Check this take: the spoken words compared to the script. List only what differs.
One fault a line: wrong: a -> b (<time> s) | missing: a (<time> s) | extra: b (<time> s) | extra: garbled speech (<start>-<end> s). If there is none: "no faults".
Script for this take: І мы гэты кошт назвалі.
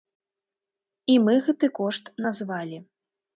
no faults